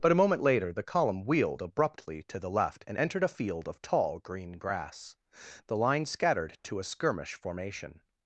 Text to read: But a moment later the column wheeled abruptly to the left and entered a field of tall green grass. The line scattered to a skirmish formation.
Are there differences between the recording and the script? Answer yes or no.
no